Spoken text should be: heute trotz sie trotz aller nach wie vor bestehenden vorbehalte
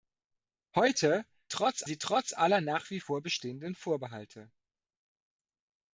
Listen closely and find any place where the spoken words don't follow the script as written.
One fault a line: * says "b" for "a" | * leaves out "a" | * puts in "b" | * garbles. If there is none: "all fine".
all fine